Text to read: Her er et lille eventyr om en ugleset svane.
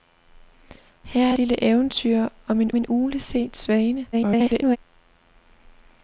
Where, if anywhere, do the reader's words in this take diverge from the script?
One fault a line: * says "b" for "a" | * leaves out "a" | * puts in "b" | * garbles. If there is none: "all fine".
* leaves out "et"
* puts in "en"
* garbles